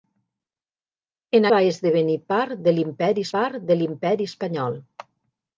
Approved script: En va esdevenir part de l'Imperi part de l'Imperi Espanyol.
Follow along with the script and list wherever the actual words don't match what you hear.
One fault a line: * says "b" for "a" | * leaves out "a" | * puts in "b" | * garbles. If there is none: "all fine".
all fine